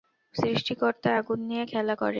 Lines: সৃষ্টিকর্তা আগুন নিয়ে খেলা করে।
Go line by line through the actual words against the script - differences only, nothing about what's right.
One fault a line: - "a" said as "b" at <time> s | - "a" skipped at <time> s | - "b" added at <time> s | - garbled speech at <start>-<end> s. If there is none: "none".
none